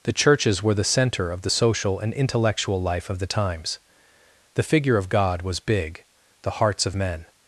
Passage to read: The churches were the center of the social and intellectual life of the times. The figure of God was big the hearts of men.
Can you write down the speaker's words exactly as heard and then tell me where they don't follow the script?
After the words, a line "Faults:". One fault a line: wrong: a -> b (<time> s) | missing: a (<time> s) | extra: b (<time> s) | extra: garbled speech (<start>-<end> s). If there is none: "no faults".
The churches were the center of the social and intellectual life of the times. The figure of God was big the hearts of men.
Faults:
no faults